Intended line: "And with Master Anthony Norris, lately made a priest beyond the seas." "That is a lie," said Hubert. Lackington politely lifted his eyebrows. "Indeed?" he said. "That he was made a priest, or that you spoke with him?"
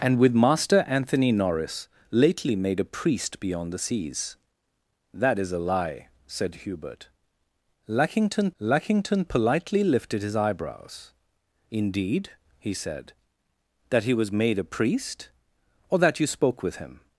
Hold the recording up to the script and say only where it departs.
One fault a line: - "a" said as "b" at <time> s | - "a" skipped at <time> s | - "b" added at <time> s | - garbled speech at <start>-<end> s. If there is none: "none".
- "lackington" added at 8.6 s